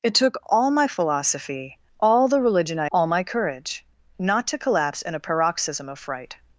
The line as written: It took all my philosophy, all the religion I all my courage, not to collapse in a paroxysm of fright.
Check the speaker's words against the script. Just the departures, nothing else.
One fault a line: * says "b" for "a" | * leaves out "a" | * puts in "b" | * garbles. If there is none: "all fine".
all fine